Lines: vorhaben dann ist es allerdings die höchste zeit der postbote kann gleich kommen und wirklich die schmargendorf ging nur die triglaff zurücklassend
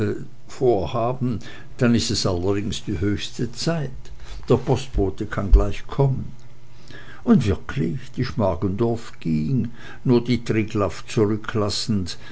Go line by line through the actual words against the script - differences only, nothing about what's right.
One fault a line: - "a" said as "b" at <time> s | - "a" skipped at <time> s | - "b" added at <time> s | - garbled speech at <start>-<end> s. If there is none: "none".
none